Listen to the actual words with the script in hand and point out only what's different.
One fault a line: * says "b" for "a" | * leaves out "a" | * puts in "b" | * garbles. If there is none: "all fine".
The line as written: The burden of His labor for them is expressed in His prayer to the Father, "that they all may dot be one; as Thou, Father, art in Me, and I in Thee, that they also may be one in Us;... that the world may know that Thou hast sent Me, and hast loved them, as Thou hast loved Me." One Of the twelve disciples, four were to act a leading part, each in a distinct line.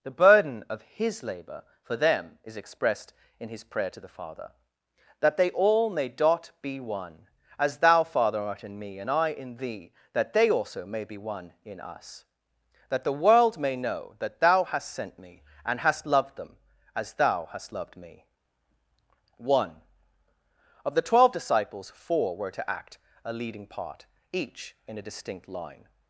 all fine